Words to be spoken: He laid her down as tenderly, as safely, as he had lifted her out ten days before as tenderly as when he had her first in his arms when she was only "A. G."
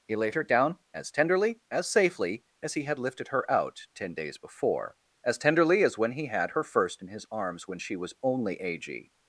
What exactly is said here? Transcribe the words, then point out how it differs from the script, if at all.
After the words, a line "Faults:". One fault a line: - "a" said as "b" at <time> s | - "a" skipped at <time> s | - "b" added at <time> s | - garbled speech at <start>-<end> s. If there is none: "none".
He laid her down as tenderly, as safely, as he had lifted her out ten days before as tenderly as when he had her first in his arms when she was only "A. G."
Faults:
none